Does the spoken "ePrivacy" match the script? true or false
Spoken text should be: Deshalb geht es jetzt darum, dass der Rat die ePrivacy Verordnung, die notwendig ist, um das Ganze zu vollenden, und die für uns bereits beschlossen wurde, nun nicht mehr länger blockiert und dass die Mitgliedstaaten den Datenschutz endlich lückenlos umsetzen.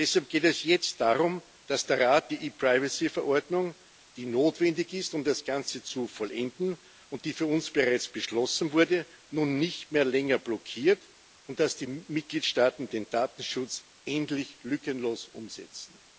true